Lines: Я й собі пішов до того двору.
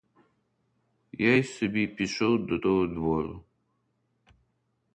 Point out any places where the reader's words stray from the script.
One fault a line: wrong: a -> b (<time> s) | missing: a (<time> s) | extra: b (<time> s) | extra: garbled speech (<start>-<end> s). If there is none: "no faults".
no faults